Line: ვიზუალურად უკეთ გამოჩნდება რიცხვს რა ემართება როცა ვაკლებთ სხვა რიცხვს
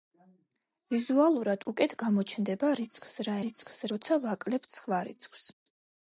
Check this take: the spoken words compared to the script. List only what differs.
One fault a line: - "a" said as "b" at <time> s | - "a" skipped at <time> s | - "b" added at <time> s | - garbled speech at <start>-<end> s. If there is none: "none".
- "ემართება" said as "რიცხვს" at 3.4 s